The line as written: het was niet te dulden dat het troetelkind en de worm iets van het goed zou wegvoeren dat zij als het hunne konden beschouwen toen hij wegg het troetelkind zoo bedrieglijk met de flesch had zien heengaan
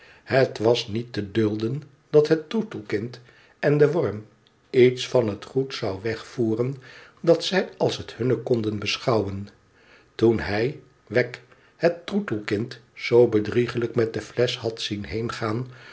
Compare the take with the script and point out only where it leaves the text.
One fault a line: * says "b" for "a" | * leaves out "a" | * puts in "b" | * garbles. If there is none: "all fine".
all fine